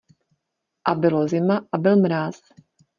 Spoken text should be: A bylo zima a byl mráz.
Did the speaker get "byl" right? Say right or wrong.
right